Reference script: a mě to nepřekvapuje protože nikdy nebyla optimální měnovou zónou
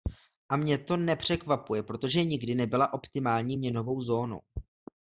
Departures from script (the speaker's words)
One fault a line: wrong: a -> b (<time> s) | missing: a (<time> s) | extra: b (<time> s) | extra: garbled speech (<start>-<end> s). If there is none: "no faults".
no faults